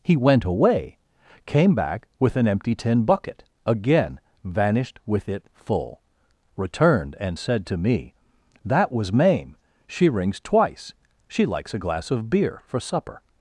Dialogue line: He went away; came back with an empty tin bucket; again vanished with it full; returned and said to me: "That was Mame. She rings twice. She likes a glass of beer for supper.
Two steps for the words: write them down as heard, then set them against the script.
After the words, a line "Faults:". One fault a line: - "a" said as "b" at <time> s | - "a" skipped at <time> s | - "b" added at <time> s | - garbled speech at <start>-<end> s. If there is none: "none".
He went away; came back with an empty tin bucket; again vanished with it full; returned and said to me: "That was Mame. She rings twice. She likes a glass of beer for supper.
Faults:
none